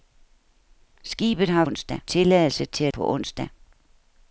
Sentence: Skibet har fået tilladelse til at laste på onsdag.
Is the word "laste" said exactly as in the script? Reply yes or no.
no